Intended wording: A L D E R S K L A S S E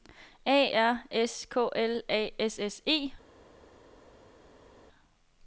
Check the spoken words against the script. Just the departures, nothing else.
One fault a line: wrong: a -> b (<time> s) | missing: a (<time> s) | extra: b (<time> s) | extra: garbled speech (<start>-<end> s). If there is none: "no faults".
missing: L D E (0.7 s)